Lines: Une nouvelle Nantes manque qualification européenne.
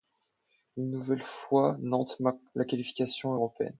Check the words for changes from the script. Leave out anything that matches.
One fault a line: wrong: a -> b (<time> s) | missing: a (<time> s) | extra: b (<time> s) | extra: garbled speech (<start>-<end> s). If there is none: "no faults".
extra: fois (1.2 s)
extra: la (2.5 s)